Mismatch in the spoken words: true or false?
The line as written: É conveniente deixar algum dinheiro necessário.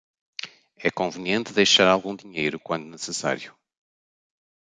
true